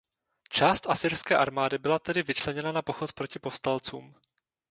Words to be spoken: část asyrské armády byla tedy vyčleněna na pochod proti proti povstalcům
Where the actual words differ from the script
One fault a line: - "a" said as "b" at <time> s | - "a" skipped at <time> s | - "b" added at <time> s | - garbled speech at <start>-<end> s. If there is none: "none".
- "proti" skipped at 3.4 s